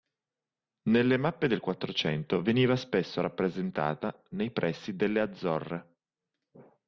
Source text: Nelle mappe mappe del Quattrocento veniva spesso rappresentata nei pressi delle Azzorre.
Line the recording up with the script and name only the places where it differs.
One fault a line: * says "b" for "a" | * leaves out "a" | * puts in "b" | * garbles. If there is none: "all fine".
* leaves out "mappe"